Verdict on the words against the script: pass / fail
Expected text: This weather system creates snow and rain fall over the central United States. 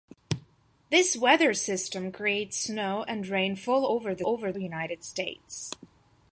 fail